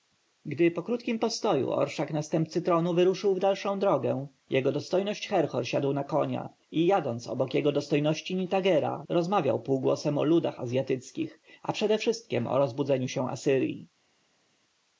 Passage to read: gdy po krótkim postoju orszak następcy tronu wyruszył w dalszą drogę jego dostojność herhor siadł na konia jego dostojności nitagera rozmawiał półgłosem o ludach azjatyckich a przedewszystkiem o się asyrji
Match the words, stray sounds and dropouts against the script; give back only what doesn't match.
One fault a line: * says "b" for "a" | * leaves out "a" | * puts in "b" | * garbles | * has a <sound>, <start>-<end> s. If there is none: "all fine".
* puts in "i jadąc obok"
* puts in "rozbudzeniu"